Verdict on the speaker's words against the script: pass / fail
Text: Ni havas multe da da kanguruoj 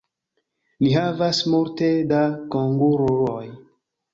fail